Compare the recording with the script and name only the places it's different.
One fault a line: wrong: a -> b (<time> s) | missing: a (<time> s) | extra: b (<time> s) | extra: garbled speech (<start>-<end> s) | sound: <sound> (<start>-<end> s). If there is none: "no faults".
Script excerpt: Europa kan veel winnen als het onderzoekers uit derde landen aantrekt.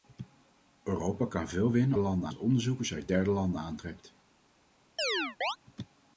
wrong: als -> landen (2.0 s)
sound: chirp (5.0-5.6 s)